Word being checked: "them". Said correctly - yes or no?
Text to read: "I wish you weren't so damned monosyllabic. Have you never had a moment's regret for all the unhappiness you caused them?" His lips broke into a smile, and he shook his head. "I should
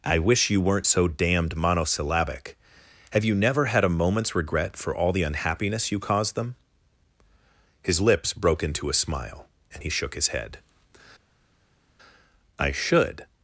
yes